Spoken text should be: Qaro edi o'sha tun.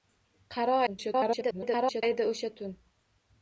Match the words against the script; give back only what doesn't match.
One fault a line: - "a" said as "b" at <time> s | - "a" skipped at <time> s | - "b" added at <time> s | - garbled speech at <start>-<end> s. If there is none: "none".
- garbled speech at 0.9-2.0 s